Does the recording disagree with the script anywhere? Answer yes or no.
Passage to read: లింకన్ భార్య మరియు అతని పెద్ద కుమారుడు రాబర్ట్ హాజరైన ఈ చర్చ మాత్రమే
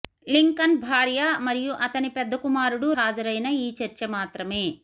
yes